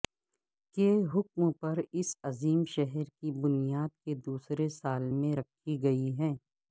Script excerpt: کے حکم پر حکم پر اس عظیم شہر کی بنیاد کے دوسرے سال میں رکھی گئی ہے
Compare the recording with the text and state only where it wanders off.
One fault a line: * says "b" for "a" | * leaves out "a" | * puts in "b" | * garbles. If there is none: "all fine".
* leaves out "حکم پر"